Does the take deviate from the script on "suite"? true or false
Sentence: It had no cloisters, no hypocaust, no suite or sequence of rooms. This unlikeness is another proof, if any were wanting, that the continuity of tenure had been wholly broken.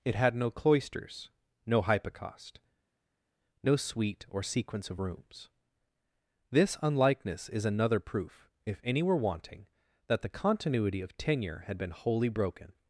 false